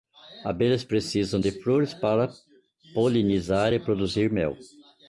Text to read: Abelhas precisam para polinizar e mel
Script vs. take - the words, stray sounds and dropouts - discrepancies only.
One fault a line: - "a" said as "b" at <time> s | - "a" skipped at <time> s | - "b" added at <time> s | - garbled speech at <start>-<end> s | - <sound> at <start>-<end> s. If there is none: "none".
- "de flores" added at 1.4 s
- "produzir" added at 3.8 s